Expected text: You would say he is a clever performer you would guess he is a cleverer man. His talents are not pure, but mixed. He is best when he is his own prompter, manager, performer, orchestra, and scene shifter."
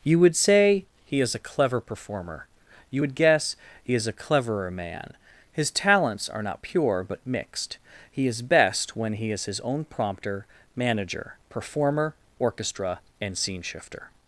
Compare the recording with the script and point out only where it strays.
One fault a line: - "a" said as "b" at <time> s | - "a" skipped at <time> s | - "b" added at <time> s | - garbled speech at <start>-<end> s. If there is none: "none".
none